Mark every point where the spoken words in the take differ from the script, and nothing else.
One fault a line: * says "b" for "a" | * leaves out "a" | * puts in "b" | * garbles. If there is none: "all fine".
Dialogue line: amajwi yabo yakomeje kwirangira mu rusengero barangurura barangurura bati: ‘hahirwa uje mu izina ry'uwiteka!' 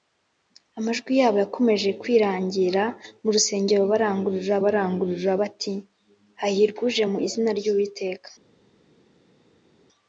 all fine